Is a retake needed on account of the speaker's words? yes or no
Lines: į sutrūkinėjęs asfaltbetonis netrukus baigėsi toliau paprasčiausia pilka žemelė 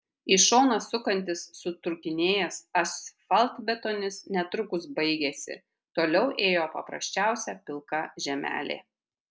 yes